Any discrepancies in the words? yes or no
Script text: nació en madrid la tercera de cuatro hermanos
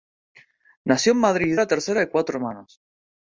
no